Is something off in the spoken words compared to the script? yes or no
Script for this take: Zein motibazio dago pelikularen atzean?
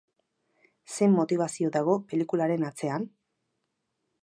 no